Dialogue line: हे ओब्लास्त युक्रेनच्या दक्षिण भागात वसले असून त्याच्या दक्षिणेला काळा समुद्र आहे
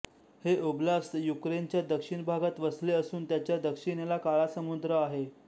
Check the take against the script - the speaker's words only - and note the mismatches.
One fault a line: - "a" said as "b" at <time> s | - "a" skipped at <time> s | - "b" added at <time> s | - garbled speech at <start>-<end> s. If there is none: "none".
none